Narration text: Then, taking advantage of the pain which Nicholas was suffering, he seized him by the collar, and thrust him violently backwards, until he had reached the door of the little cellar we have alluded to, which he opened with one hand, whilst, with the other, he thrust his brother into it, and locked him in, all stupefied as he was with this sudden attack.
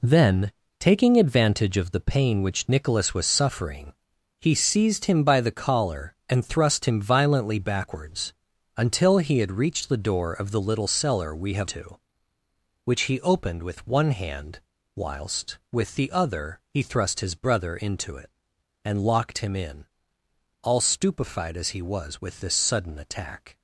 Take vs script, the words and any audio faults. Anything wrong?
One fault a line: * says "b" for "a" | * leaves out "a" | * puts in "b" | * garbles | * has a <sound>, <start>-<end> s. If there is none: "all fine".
* leaves out "alluded"